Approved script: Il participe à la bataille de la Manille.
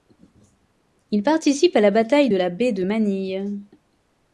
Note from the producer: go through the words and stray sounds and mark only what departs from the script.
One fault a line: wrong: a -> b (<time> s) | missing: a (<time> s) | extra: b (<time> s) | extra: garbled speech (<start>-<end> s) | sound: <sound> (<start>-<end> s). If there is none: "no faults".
extra: baie de (2.5 s)